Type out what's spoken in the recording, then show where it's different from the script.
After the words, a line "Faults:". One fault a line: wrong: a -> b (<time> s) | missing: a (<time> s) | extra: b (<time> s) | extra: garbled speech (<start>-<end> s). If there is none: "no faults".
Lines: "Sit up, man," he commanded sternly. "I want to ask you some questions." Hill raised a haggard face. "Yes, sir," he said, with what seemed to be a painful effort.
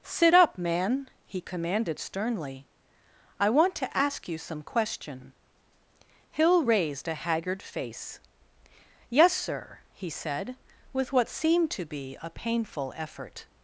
"Sit up, man," he commanded sternly. "I want to ask you some question." Hill raised a haggard face. "Yes, sir," he said, with what seemed to be a painful effort.
Faults:
wrong: questions -> question (4.6 s)